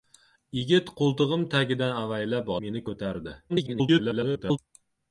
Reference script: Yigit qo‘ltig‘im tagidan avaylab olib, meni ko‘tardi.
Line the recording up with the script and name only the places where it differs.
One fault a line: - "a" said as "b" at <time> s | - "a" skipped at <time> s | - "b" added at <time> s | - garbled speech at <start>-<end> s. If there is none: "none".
- "olib" skipped at 2.5 s
- garbled speech at 3.5-4.6 s